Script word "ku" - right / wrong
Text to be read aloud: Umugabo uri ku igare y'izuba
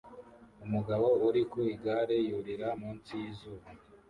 right